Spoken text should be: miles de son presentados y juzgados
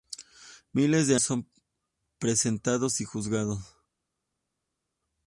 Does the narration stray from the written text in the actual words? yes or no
no